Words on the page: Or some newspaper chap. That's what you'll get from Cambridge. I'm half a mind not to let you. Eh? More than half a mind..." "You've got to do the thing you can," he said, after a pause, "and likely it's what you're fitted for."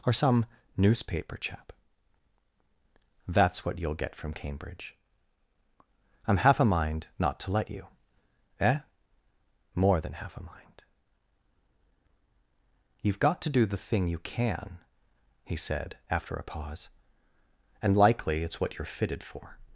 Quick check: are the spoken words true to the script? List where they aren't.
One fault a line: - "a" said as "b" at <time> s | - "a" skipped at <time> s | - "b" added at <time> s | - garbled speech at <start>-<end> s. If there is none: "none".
none